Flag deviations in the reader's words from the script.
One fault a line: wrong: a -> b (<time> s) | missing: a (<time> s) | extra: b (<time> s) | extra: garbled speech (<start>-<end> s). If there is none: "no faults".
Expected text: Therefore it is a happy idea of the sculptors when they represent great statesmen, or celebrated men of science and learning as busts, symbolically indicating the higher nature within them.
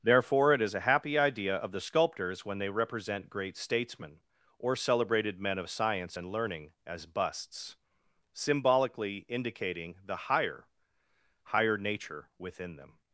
extra: higher (11.5 s)